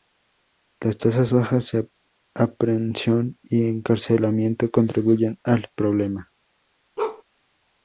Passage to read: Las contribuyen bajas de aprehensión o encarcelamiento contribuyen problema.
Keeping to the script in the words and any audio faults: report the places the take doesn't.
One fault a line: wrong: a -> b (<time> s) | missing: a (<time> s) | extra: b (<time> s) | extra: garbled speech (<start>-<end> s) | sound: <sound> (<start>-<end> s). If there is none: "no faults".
wrong: contribuyen -> tasas (1.0 s)
wrong: o -> y (3.5 s)
extra: al (5.4 s)
sound: bark (7.0-7.2 s)